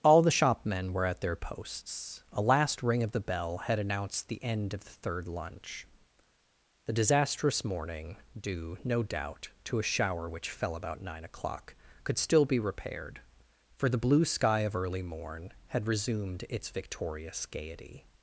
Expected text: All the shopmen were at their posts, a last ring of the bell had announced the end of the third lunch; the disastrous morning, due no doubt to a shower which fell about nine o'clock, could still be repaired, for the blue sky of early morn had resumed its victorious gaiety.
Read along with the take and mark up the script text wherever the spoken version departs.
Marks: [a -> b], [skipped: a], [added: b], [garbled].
All the shopmen were at their posts, a last ring of the bell had announced the end of the third lunch; the disastrous morning, due no doubt to a shower which fell about nine o'clock, could still be repaired, for the blue sky of early morn had resumed its victorious gaiety.